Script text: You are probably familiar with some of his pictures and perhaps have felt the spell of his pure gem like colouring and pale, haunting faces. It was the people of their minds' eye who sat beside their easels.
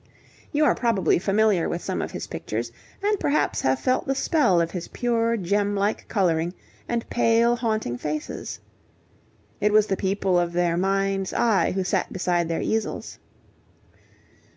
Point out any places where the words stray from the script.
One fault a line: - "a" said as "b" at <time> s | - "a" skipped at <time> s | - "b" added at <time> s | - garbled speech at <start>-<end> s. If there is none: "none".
none